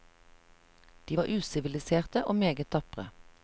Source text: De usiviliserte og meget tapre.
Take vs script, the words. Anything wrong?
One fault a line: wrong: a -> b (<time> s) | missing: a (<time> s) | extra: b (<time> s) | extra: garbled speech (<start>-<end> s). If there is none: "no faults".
extra: var (1.2 s)